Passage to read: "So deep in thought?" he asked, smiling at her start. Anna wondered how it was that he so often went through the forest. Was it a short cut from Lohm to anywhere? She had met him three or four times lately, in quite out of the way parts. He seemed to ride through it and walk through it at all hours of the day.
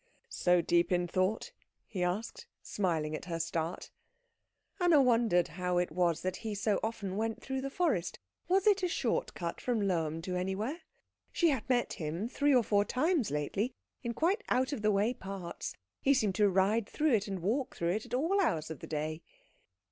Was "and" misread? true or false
false